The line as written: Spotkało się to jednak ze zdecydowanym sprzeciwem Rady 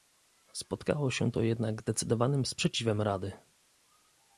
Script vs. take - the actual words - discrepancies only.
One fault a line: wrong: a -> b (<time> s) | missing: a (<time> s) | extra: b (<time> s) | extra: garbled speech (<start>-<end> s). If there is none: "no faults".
missing: ze (1.8 s)